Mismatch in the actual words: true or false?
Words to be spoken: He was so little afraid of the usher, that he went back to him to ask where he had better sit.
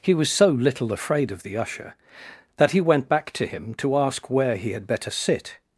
false